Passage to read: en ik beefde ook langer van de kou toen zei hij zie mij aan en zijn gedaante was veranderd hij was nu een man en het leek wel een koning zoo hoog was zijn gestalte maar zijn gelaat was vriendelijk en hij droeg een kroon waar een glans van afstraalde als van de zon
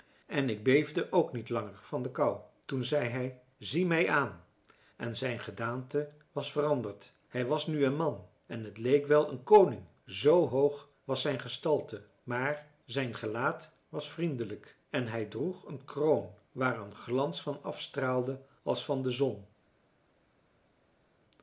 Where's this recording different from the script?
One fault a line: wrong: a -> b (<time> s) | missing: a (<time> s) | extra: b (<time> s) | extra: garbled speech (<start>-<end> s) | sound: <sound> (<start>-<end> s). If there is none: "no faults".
extra: niet (1.3 s)